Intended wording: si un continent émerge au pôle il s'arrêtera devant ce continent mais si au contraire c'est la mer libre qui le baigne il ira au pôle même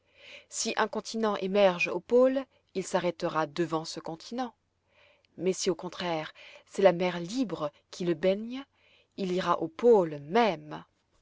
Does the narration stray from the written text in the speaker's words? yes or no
no